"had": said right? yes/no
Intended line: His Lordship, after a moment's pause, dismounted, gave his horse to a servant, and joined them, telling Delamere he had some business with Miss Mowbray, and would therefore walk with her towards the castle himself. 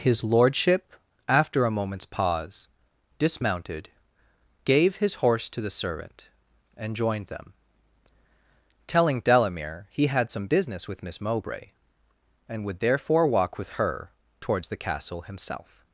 yes